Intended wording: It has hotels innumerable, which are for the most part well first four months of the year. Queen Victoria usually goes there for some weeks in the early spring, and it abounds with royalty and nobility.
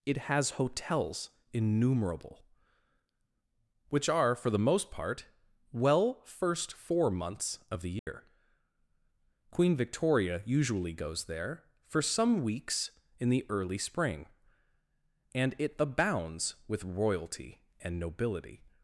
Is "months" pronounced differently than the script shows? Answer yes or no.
no